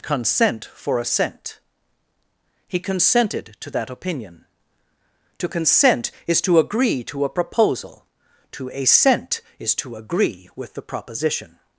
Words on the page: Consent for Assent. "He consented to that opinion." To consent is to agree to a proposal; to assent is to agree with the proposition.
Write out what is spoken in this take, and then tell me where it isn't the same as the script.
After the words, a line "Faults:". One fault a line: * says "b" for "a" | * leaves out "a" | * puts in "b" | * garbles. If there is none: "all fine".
Consent for Assent. "He consented to that opinion." To consent is to agree to a proposal; to assent is to agree with the proposition.
Faults:
all fine